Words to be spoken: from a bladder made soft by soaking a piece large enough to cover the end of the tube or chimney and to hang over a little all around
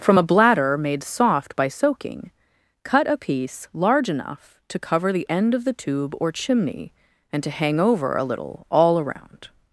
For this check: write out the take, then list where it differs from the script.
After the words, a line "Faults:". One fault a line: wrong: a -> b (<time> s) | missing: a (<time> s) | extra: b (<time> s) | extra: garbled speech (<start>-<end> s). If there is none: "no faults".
from a bladder made soft by soaking cut a piece large enough to cover the end of the tube or chimney and to hang over a little all around
Faults:
extra: cut (2.8 s)